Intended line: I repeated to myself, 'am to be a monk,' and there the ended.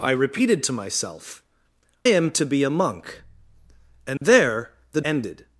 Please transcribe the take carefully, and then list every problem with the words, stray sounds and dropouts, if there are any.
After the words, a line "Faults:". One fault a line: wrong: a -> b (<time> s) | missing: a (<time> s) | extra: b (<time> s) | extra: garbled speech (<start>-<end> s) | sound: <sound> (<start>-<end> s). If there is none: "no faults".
I repeated to myself, 'am to be a monk,' and there the ended.
Faults:
sound: dropout (4.2-4.2 s)